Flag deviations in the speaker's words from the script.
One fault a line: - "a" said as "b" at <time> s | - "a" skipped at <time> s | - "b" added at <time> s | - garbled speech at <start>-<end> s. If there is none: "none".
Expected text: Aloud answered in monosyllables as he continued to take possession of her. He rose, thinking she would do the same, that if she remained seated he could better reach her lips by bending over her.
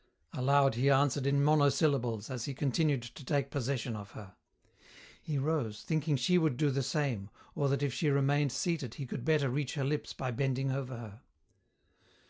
- "he" added at 0.7 s
- "or" added at 7.5 s